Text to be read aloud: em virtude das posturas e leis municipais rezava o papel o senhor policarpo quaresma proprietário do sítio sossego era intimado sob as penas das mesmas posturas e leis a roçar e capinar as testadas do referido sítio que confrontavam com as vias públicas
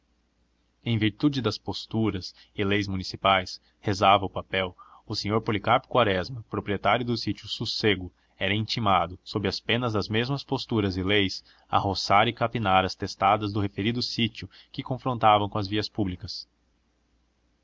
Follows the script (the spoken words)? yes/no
yes